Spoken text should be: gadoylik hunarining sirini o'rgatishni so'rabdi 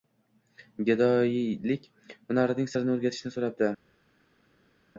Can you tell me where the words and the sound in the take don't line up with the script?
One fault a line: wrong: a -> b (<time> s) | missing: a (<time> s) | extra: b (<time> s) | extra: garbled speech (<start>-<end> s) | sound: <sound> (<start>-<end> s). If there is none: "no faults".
no faults